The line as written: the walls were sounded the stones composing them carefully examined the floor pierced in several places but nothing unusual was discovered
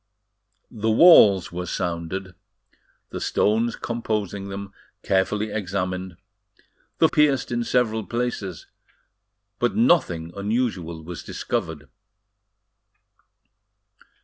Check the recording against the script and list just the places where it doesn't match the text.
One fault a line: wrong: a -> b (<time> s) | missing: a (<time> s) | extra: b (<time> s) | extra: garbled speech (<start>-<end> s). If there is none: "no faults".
missing: floor (7.1 s)